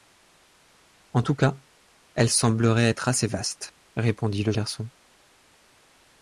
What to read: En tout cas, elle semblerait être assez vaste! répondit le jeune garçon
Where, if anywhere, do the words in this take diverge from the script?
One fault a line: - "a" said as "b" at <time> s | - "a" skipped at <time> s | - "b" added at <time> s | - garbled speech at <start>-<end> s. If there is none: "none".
- "jeune" skipped at 4.5 s